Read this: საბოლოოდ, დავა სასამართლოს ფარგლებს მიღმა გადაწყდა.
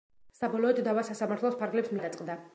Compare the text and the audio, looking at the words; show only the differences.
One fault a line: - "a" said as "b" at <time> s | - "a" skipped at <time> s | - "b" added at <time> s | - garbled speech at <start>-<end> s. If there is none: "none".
- "მიღმა" skipped at 1.9 s